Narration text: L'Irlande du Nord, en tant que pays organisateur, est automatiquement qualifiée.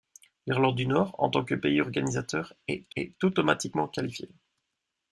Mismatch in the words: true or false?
true